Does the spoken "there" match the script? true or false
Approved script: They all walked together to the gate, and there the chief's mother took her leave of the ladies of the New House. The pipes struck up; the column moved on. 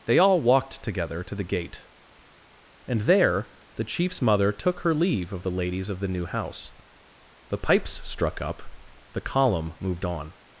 true